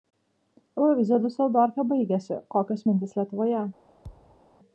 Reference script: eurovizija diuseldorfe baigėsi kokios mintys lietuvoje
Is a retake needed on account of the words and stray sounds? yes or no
yes